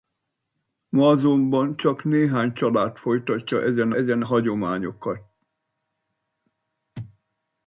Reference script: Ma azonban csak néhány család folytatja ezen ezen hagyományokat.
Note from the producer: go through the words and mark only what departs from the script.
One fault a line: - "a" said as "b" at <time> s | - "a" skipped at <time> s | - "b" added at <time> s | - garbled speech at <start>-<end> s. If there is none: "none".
none